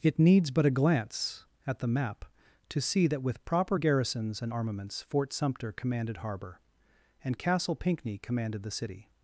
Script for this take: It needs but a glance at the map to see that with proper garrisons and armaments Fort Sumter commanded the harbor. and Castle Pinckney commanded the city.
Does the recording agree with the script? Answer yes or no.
no